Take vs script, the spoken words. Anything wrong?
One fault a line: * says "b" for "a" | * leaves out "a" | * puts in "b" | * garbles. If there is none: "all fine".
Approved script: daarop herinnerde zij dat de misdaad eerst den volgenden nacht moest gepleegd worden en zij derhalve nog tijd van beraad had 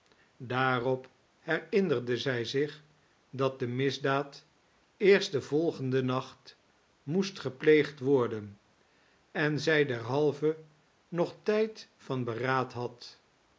* puts in "zich"